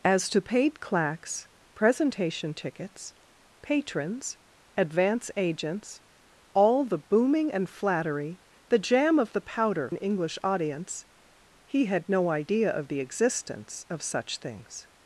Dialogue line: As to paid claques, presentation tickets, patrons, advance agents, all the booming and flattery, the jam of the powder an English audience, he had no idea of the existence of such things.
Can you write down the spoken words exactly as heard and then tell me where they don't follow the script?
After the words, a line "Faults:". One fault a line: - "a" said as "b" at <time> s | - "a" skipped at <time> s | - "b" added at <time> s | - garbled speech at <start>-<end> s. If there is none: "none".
As to paid claques, presentation tickets, patrons, advance agents, all the booming and flattery, the jam of the powder an English audience, he had no idea of the existence of such things.
Faults:
none